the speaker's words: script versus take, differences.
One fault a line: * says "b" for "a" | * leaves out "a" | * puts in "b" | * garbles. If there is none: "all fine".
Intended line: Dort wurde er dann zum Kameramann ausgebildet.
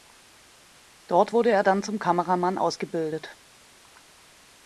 all fine